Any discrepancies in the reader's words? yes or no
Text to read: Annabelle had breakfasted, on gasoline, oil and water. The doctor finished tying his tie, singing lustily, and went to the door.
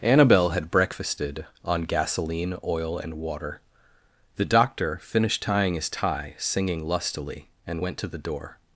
no